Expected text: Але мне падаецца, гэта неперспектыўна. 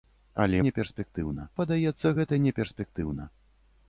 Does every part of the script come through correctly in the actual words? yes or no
no